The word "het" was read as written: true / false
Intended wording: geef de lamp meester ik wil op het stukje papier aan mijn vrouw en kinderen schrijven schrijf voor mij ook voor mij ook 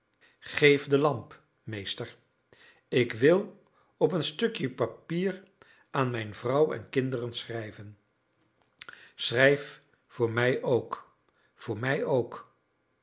false